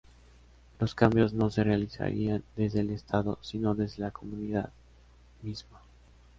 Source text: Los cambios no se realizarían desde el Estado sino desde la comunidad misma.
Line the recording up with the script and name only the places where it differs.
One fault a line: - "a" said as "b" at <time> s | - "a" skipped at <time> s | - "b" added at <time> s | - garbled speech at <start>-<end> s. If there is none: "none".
none